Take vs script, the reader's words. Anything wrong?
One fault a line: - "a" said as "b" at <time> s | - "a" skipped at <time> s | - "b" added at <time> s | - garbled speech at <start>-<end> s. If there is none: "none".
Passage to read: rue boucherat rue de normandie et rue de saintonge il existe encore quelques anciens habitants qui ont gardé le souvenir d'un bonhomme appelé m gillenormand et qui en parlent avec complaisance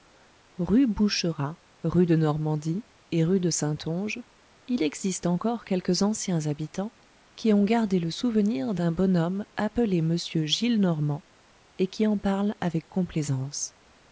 none